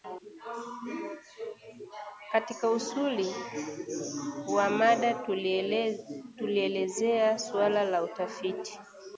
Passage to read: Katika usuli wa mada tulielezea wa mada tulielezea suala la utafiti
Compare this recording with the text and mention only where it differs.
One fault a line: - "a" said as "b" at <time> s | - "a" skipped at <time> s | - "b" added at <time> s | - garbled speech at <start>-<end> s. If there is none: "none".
- "wa mada tulielezea" skipped at 7.4 s